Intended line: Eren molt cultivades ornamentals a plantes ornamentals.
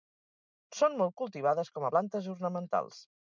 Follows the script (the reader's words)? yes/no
no